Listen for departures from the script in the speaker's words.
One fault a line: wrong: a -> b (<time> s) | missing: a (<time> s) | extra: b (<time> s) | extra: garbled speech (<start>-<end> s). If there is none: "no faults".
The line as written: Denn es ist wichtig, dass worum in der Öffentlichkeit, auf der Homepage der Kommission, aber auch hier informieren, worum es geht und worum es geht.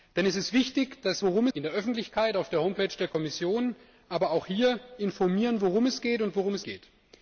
no faults